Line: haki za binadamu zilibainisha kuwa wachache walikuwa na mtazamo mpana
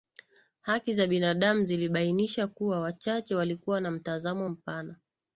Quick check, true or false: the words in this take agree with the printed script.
true